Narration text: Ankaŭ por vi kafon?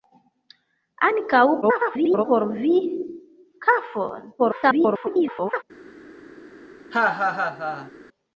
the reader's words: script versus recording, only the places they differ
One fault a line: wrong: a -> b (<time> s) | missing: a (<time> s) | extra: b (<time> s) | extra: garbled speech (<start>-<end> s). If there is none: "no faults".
extra: garbled speech (1.6-2.2 s)
extra: garbled speech (4.4-5.6 s)